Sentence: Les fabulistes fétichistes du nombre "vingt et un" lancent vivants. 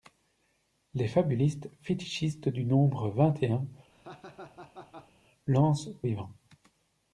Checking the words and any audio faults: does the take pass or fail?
fail